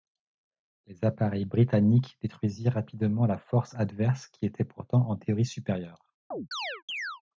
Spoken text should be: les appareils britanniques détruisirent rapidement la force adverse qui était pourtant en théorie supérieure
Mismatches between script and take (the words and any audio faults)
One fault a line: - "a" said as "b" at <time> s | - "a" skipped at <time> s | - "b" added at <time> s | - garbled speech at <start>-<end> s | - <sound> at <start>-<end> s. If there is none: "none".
- chirp at 6.3-7.2 s